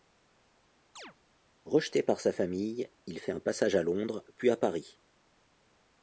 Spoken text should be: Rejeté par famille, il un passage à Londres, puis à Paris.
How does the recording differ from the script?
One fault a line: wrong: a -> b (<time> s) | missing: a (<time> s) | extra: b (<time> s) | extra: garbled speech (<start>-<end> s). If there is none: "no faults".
extra: sa (2.2 s)
extra: fait (3.2 s)